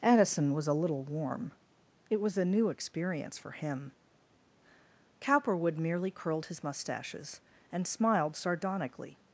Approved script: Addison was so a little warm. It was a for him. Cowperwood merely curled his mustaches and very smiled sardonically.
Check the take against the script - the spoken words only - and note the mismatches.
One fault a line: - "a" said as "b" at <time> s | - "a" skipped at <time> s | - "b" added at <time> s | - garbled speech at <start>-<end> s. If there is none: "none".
- "so" skipped at 0.7 s
- "new experience" added at 2.5 s
- "very" skipped at 7.9 s